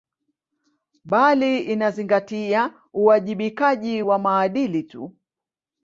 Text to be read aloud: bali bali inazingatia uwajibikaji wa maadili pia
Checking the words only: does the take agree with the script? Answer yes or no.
no